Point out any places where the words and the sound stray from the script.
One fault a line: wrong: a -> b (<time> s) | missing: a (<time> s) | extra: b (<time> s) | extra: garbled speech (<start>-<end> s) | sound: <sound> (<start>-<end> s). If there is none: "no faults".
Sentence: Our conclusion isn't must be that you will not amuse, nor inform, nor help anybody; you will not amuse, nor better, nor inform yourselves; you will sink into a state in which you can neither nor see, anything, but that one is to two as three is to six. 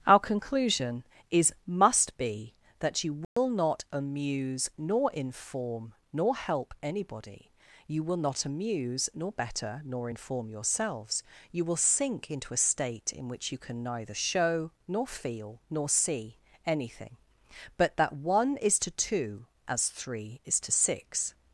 wrong: isn't -> is (1.3 s)
sound: dropout (3.2-3.4 s)
extra: show nor feel (14.1 s)